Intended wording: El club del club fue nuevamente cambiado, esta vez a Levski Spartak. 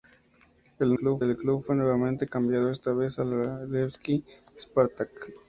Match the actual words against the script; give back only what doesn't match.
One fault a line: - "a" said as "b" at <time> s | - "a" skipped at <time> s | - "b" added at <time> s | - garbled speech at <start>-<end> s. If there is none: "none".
none